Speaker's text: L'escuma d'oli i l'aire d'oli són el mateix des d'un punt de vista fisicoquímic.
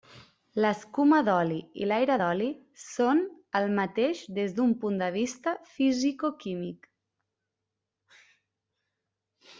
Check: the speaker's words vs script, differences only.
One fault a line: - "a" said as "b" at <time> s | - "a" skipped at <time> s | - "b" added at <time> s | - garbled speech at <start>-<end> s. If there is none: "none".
none